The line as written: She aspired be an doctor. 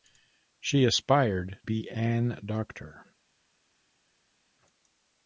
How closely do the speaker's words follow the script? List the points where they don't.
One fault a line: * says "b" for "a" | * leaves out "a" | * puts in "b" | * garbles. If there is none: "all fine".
all fine